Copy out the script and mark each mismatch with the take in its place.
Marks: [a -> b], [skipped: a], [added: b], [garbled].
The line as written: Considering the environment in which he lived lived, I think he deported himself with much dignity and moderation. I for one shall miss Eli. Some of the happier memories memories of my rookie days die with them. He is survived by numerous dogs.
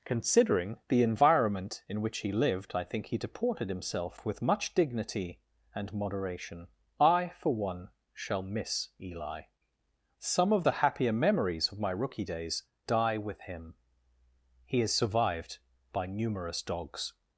Considering the environment in which he lived [skipped: lived,] I think he deported himself with much dignity and moderation. I for one shall miss Eli. Some of the happier memories [skipped: memories] of my rookie days die with [them. -> him] He is survived by numerous dogs.